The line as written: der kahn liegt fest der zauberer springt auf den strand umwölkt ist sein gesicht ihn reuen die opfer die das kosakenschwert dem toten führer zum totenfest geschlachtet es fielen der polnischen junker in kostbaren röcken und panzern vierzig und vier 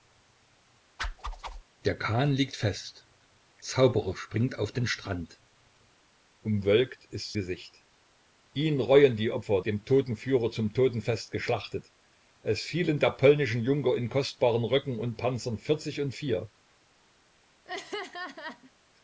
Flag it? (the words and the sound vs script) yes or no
yes